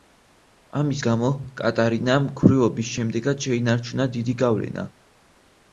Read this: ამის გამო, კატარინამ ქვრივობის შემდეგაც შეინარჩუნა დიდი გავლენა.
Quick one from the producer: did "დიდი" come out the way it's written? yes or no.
yes